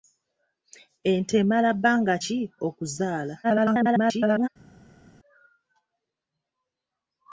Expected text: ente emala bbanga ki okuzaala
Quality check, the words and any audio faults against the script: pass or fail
fail